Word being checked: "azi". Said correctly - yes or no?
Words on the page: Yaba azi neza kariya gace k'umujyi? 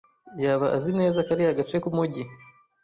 yes